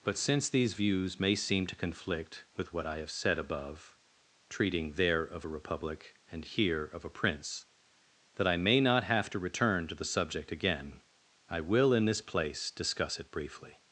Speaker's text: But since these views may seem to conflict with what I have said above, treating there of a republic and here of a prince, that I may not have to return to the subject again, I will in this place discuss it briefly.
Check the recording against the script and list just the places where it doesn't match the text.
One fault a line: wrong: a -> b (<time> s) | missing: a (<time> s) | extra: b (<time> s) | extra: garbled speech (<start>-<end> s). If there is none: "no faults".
no faults